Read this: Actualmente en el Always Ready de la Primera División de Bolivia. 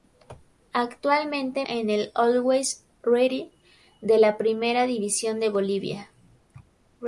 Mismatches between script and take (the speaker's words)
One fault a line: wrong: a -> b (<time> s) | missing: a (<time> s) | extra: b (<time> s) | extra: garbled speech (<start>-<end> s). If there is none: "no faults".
no faults